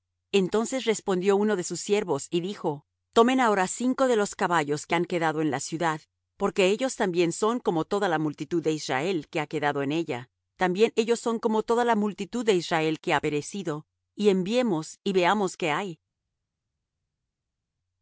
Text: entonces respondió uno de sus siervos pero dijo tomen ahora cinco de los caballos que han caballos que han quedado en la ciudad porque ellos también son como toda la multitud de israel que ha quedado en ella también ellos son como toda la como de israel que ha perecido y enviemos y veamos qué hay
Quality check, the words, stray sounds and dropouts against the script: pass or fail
fail